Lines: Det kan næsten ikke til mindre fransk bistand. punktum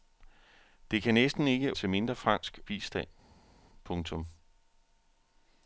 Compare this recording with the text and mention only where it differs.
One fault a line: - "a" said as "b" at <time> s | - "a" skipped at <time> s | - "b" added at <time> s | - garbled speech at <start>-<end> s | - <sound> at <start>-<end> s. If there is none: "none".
none